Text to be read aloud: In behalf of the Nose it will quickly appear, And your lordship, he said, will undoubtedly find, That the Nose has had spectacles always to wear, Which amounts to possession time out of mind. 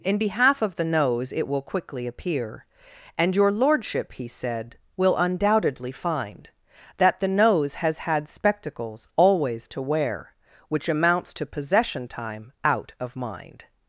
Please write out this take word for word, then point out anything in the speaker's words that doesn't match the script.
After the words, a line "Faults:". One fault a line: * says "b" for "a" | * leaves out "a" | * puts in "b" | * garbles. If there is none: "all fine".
In behalf of the Nose it will quickly appear, And your lordship, he said, will undoubtedly find, That the Nose has had spectacles always to wear, Which amounts to possession time out of mind.
Faults:
all fine